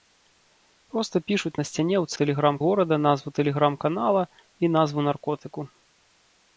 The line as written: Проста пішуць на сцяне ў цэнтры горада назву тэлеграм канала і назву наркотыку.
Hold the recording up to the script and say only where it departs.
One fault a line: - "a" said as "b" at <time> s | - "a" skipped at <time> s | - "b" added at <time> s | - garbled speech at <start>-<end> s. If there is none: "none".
- "цэнтры" said as "тэлеграм" at 2.2 s